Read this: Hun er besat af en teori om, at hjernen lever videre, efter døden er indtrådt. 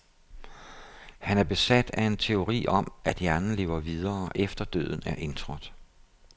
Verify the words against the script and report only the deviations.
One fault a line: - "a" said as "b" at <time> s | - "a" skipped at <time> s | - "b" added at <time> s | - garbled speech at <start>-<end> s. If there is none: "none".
- "Hun" said as "Han" at 1.2 s